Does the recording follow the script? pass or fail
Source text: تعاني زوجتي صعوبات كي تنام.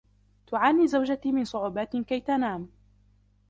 fail